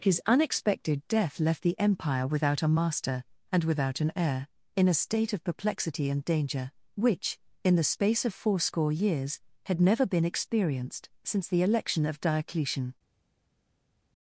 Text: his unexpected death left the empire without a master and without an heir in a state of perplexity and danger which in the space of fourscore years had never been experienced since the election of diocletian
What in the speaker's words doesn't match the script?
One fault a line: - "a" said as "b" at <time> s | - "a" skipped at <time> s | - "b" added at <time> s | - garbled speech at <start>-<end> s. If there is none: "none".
none